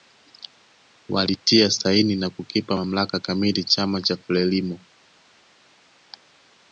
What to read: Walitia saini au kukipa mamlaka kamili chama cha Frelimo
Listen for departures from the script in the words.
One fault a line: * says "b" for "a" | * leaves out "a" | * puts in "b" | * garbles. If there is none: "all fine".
* says "na" for "au"